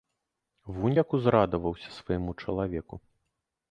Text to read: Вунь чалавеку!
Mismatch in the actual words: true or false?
true